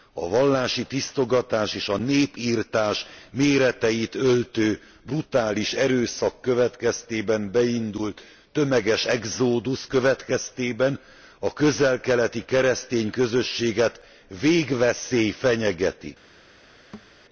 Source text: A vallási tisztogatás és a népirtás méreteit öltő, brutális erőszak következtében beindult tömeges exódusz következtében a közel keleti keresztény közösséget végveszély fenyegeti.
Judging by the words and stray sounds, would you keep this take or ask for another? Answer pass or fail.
fail